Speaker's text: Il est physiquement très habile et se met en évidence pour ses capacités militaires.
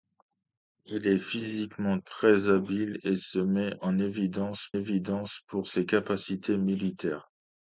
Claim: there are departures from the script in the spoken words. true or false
true